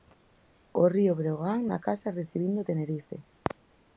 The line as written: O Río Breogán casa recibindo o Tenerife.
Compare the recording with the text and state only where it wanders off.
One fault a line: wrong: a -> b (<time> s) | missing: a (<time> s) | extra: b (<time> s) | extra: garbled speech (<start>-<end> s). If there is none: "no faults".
extra: na (1.7 s)